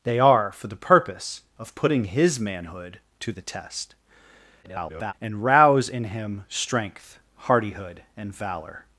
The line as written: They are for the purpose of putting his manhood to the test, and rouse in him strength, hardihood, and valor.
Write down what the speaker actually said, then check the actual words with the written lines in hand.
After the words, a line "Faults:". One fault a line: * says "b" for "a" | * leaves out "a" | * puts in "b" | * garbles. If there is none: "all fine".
They are for the purpose of putting his manhood to the test, [garbled] and rouse in him strength, hardihood, and valor.
Faults:
* garbles